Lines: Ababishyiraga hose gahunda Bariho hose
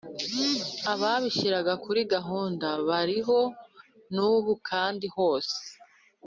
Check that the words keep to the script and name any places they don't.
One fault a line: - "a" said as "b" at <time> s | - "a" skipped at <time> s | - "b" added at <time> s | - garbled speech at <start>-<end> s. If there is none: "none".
- "hose" said as "kuri" at 1.8 s
- "n'ubu kandi" added at 4.1 s